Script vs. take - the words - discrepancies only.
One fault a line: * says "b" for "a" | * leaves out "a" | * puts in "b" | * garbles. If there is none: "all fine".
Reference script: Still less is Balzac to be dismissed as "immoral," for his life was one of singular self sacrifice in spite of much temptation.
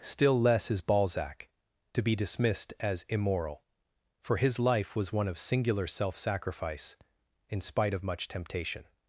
all fine